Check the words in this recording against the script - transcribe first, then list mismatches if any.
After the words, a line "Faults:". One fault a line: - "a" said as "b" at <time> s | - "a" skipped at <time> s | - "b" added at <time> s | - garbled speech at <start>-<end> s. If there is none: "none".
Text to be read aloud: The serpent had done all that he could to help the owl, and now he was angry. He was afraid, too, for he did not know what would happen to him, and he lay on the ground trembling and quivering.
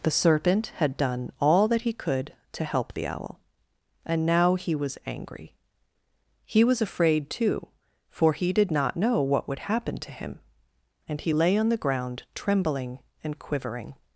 The serpent had done all that he could to help the owl, and now he was angry. He was afraid, too, for he did not know what would happen to him, and he lay on the ground trembling and quivering.
Faults:
none